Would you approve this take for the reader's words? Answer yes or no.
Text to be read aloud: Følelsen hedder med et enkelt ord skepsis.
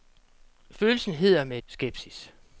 no